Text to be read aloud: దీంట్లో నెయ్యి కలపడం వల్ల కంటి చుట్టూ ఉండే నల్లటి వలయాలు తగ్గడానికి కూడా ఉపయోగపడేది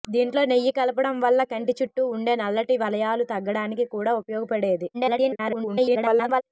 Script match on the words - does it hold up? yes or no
no